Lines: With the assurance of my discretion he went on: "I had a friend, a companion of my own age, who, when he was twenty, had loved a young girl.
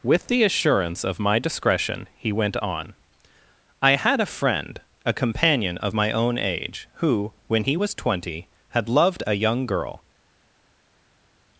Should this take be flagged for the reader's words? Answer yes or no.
no